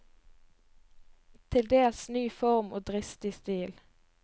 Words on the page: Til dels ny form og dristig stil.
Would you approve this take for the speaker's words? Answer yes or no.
yes